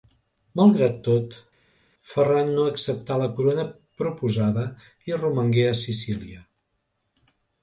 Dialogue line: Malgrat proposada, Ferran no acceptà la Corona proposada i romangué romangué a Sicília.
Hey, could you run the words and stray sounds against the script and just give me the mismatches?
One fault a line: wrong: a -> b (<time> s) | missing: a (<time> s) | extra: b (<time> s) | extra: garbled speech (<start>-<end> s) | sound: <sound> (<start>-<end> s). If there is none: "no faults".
wrong: proposada -> tot (1.1 s)
missing: romangué (5.7 s)